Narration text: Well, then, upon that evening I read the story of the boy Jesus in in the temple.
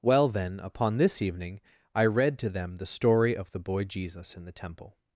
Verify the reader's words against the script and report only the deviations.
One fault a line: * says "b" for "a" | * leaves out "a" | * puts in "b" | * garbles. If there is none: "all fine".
* says "this" for "that"
* puts in "to them"
* leaves out "in"